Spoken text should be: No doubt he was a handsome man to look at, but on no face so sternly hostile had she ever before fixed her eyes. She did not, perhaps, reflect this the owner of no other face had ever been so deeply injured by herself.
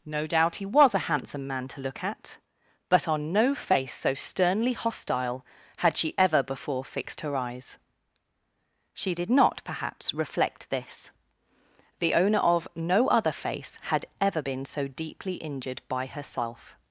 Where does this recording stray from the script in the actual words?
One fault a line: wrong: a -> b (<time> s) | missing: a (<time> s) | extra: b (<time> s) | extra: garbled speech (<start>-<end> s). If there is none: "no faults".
no faults